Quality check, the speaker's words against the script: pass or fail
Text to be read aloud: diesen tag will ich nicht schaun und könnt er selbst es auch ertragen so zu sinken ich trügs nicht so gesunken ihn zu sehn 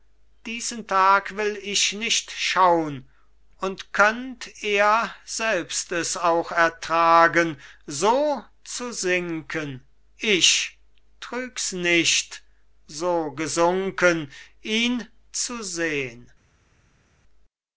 pass